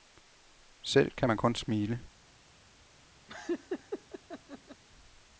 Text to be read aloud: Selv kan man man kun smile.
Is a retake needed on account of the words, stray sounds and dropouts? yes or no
yes